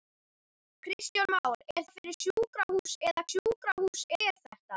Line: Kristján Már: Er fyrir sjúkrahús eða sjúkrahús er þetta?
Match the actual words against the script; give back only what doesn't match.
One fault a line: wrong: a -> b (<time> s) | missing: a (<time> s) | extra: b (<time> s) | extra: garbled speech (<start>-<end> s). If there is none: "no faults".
no faults